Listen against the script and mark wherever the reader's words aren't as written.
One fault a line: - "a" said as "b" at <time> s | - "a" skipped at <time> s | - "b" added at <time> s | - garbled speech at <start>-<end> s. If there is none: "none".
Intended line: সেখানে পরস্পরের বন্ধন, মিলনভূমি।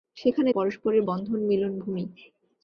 none